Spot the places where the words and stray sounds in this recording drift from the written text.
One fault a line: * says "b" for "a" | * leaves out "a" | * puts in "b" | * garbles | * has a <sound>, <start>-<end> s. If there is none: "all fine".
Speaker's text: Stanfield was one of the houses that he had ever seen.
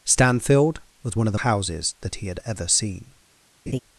* has a laugh, 3.7-3.8 s